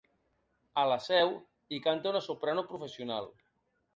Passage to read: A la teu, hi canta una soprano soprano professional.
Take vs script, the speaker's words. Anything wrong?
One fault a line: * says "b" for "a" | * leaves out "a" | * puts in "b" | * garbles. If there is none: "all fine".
* says "seu" for "teu"
* leaves out "soprano"